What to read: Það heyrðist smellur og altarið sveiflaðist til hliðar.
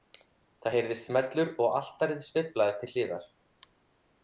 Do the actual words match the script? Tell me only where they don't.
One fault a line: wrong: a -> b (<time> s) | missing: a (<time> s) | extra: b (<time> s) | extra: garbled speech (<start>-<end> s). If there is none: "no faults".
no faults